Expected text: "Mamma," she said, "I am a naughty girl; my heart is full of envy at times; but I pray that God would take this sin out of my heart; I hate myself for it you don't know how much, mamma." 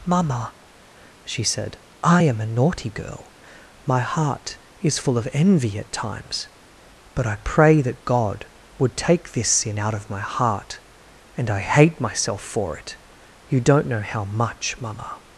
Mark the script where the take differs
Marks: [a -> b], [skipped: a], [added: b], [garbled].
"Mamma," she said, "I am a naughty girl; my heart is full of envy at times; but I pray that God would take this sin out of my heart; [added: and] I hate myself for it you don't know how much, mamma."